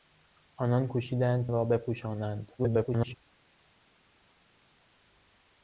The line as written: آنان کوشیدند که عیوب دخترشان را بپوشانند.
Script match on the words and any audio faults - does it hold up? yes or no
no